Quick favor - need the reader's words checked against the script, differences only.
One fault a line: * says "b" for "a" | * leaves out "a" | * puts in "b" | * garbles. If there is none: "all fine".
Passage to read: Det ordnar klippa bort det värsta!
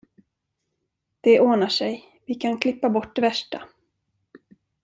* puts in "sig vi kan"